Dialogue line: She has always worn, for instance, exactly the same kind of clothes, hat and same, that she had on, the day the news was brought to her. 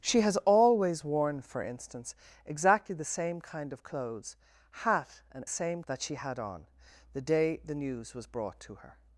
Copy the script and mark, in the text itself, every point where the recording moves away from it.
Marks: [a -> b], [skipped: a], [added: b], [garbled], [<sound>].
She has always worn, for instance, exactly the same kind of clothes, hat and same, that she had on, the day the news was brought to her.